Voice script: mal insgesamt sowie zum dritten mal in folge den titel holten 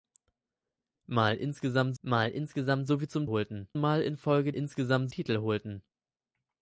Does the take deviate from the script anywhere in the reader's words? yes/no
yes